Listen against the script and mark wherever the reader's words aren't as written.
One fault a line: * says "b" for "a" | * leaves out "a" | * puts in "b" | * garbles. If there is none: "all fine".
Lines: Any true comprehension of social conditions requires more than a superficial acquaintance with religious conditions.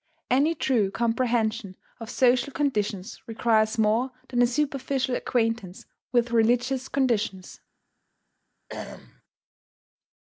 all fine